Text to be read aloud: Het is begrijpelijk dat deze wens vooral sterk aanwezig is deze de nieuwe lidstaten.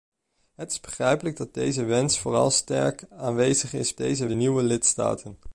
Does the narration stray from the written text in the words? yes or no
no